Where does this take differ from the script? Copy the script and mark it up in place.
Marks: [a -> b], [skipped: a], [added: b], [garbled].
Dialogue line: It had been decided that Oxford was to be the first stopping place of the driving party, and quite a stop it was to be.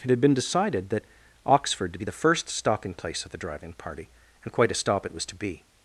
It had been decided that Oxford [skipped: was] to be the first stopping place of the driving party, and quite a stop it was to be.